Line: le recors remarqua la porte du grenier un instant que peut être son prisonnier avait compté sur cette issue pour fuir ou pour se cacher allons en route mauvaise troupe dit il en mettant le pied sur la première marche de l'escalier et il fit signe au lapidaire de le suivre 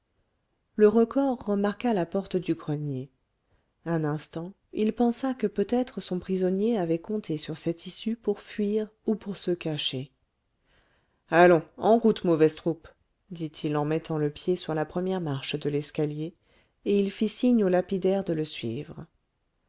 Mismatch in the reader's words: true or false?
true